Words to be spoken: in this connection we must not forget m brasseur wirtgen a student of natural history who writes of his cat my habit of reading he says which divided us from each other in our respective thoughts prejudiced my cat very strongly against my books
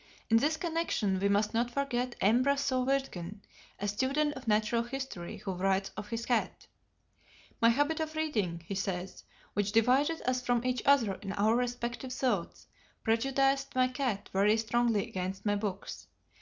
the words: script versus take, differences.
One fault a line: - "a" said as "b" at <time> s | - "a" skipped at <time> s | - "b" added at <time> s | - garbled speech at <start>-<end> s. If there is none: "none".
none